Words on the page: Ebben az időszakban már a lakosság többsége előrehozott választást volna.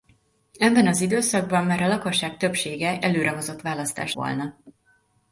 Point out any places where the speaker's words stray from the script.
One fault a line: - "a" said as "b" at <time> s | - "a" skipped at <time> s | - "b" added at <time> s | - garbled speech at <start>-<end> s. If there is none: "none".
none